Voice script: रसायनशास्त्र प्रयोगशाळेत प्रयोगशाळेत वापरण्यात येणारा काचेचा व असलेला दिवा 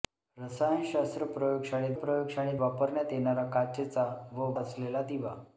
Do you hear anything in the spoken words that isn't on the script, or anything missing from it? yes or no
no